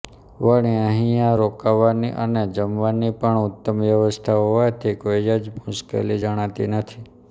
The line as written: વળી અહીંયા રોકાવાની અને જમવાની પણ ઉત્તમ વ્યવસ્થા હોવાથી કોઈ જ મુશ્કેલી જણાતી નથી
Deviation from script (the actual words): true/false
false